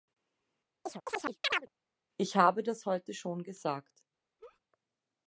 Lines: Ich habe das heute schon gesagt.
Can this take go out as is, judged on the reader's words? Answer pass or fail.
pass